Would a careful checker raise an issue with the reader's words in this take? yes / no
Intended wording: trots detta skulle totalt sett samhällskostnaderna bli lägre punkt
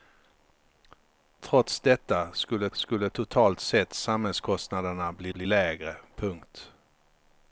yes